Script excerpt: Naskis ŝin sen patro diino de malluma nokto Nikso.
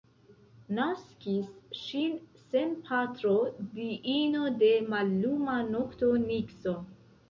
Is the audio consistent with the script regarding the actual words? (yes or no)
yes